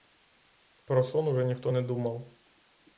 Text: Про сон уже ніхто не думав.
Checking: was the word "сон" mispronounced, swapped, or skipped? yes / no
no